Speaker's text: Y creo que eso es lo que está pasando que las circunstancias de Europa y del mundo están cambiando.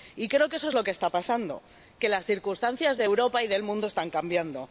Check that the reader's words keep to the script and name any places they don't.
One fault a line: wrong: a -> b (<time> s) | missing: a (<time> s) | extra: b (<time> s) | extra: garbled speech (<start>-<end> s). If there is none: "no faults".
no faults